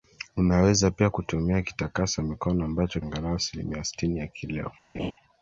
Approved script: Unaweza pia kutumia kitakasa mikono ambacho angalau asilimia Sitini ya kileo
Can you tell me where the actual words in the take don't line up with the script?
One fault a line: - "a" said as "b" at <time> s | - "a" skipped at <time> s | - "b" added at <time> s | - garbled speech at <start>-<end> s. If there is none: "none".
none